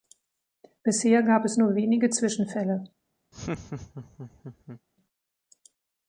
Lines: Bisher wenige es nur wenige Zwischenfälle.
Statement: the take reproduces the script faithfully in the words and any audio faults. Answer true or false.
false